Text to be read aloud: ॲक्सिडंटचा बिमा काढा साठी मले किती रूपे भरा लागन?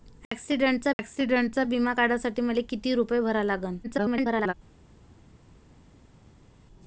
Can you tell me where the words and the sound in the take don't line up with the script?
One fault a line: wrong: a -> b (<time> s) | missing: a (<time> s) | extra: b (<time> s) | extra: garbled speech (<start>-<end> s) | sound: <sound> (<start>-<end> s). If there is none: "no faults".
extra: ॲक्सिडंटचा (1.0 s)
extra: garbled speech (3.8-4.5 s)